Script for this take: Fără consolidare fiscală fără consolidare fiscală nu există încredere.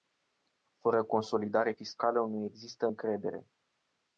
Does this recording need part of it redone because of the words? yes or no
yes